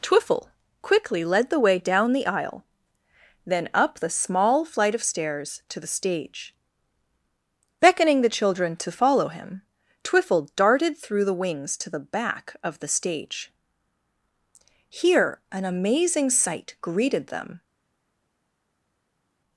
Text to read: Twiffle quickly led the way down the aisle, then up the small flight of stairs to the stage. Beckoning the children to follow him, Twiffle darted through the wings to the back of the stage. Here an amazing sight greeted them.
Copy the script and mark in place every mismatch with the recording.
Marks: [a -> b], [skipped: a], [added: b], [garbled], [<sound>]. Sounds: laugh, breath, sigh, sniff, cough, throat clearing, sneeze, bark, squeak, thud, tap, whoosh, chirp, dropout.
Twiffle quickly led the way down the aisle, then up the small flight of stairs to the stage. Beckoning the children to follow him, Twiffle darted through the wings to the back of the stage. Here an amazing sight greeted them.